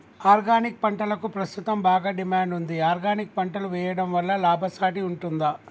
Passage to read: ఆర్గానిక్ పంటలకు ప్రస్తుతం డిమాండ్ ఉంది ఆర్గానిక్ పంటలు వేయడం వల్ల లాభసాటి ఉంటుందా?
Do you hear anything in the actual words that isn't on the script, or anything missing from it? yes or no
yes